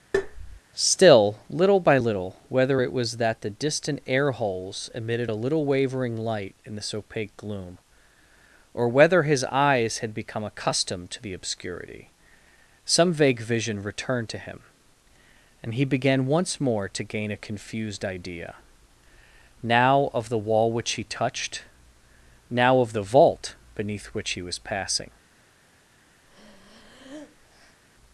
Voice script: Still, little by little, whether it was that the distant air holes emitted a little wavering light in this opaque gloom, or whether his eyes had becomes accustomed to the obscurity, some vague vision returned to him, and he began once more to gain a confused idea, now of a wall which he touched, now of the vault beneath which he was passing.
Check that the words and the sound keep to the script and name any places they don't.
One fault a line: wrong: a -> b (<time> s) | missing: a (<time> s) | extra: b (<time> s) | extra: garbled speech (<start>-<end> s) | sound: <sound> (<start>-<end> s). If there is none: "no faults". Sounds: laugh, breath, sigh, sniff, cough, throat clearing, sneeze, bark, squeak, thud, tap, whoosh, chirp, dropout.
sound: tap (0.1-0.6 s)
wrong: becomes -> become (10.1 s)
wrong: a -> the (20.3 s)
sound: breath (26.2-27.8 s)